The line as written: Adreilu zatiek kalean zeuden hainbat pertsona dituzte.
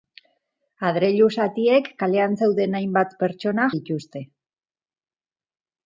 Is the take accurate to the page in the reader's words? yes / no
yes